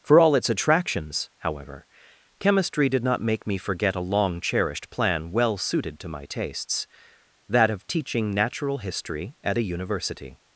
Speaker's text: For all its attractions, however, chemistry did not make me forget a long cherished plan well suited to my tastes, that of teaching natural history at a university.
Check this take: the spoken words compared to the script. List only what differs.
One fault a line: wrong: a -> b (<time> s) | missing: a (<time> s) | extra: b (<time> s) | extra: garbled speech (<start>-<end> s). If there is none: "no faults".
no faults